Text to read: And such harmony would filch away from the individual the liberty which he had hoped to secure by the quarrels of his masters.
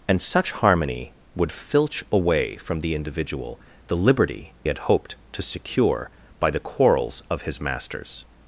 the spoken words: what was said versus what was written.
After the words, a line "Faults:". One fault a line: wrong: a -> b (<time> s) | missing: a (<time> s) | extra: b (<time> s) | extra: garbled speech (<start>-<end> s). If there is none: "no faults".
And such harmony would filch away from the individual the liberty had hoped to secure by the quarrels of his masters.
Faults:
missing: which he (4.5 s)